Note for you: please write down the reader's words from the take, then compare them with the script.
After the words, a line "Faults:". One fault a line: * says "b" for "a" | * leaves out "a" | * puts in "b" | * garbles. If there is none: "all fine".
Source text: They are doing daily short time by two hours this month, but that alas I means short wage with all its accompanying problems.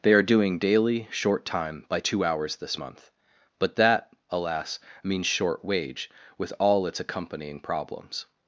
They are doing daily short time by two hours this month, but that alas means short wage with all its accompanying problems.
Faults:
* leaves out "I"